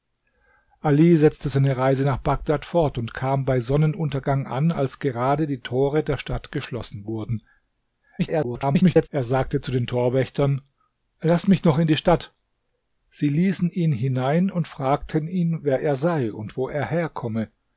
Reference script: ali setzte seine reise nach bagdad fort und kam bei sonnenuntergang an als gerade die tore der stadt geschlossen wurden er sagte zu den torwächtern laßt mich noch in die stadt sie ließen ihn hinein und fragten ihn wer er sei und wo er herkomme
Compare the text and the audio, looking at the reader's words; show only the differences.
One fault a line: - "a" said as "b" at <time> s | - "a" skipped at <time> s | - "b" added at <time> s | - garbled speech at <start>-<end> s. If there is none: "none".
- garbled speech at 8.2-9.1 s